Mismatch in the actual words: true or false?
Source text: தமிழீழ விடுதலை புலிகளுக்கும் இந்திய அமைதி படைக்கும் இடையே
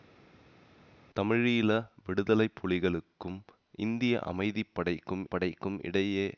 true